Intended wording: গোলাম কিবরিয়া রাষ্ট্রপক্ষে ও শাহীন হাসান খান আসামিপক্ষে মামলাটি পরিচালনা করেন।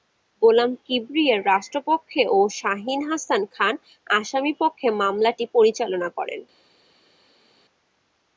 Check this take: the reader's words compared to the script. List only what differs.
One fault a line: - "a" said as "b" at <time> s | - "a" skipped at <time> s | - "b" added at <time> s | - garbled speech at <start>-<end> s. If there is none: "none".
none